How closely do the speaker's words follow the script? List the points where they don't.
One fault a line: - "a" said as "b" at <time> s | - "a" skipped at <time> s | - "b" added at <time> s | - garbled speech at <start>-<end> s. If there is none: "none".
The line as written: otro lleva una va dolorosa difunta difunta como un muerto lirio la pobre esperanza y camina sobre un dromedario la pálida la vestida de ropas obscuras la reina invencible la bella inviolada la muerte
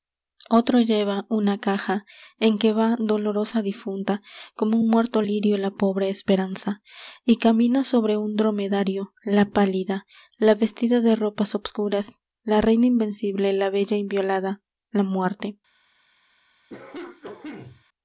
- "caja en que" added at 1.6 s
- "difunta" skipped at 4.2 s